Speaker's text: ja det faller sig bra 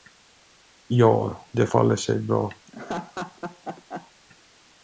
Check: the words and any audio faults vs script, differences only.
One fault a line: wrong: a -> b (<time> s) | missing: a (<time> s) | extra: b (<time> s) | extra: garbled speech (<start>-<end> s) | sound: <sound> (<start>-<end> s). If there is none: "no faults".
sound: laugh (2.7-4.1 s)